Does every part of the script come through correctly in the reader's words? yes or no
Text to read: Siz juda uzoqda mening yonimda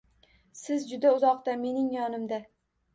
yes